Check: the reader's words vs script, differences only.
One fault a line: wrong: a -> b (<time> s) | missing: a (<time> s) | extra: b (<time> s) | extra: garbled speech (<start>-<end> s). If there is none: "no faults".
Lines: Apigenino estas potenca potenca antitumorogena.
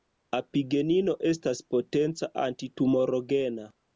missing: potenca (2.3 s)